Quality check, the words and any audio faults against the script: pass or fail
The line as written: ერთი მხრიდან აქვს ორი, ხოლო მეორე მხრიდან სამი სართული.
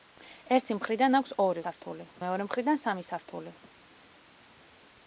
fail